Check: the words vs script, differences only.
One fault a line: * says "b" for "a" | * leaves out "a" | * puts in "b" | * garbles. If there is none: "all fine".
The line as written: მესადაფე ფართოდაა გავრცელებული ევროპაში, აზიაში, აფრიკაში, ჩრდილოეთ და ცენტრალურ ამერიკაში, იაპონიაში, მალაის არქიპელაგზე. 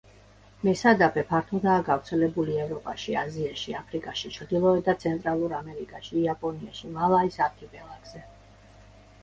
all fine